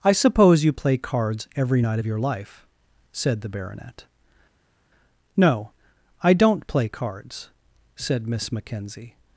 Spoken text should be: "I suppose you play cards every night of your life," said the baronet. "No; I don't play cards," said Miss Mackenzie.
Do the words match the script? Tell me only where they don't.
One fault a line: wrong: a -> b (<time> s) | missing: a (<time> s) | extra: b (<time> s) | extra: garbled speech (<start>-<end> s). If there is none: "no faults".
no faults